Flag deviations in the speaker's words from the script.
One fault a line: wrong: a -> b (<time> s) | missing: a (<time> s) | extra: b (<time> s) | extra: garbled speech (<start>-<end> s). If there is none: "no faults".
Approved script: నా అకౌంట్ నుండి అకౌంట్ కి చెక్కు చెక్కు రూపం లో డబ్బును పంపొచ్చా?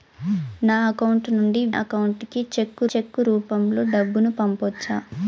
no faults